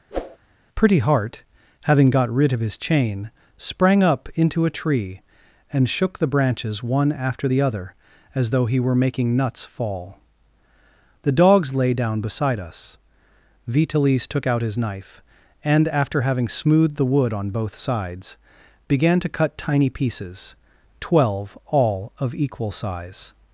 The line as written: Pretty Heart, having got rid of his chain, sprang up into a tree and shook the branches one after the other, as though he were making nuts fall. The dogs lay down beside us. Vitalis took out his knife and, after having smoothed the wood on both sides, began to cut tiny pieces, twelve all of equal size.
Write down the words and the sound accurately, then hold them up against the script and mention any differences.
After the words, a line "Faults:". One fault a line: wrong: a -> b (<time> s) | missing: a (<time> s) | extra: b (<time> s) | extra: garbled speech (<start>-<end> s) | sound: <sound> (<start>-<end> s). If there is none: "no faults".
Pretty Heart, having got rid of his chain, sprang up into a tree and shook the branches one after the other, as though he were making nuts fall. The dogs lay down beside us. Vitalis took out his knife and, after having smoothed the wood on both sides, began to cut tiny pieces, twelve all of equal size.
Faults:
sound: whoosh (0.1-0.4 s)